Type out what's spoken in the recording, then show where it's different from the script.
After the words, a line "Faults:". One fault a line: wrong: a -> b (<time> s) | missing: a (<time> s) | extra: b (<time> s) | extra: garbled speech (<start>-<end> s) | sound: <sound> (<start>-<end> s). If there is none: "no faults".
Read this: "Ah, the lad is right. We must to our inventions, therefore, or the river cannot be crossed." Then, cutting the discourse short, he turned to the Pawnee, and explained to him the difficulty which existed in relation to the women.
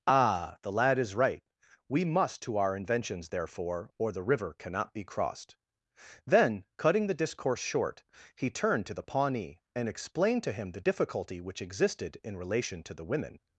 "Ah, the lad is right. We must to our inventions, therefore, or the river cannot be crossed." Then, cutting the discourse short, he turned to the Pawnee, and explained to him the difficulty which existed in relation to the women.
Faults:
no faults